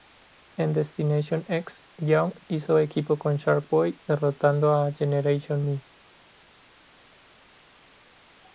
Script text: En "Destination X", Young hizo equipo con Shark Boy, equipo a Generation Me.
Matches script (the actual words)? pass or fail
fail